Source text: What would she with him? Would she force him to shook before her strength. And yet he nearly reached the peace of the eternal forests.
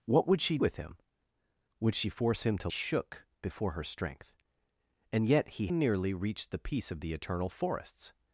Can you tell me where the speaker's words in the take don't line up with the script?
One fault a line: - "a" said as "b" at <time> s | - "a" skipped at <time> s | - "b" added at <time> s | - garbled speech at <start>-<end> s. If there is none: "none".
none